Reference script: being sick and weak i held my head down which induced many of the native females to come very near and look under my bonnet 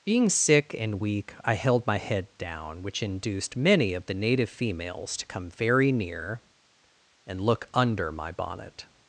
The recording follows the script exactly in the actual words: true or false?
true